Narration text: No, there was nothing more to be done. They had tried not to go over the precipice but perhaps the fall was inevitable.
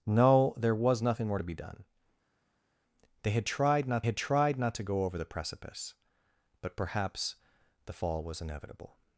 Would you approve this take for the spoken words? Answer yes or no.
no